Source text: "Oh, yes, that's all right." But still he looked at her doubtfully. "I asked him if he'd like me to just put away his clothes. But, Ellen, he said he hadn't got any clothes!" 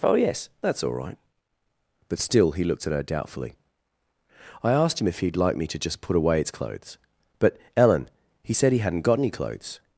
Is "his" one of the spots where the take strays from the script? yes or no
yes